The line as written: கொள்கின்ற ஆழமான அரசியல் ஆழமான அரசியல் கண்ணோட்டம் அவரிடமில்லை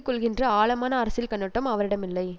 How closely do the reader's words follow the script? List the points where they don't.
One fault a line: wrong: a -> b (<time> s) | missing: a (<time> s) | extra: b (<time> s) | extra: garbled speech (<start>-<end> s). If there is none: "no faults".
missing: ஆழமான அரசியல் (1.3 s)